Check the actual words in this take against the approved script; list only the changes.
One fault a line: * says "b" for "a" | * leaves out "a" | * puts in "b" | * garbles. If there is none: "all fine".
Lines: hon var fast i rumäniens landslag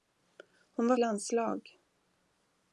* leaves out "fast i rumäniens"